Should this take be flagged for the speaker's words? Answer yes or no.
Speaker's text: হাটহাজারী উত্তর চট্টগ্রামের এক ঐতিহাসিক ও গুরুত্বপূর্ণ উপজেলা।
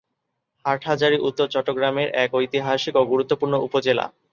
no